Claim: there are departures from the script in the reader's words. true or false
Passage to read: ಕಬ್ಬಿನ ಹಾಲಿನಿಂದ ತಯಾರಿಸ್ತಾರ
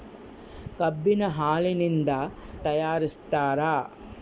false